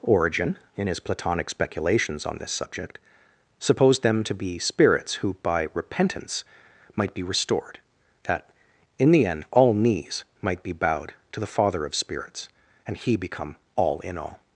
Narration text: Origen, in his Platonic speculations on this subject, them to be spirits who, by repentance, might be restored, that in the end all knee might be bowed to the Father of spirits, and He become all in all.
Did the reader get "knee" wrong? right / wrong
wrong